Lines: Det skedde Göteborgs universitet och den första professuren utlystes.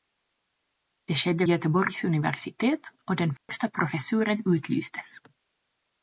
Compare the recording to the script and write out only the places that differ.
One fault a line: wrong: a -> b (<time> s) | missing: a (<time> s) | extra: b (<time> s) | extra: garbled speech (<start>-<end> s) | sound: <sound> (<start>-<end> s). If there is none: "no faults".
sound: dropout (3.4-3.5 s)